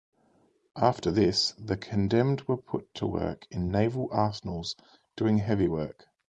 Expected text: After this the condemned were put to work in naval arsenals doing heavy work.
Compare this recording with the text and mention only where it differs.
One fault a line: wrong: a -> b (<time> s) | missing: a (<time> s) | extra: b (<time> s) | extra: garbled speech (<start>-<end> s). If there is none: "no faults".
no faults